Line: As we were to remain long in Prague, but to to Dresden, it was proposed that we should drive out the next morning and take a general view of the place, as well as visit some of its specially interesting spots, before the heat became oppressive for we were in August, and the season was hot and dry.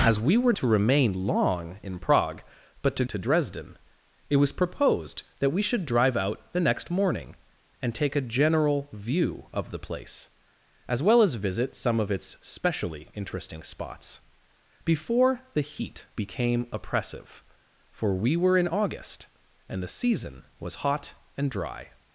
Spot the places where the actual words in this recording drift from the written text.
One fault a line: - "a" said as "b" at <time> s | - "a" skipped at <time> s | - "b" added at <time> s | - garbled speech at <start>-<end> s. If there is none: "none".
none